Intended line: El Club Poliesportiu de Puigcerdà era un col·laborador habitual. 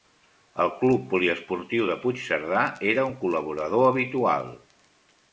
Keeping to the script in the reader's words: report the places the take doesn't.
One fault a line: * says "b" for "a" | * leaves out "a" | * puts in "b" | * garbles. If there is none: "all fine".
all fine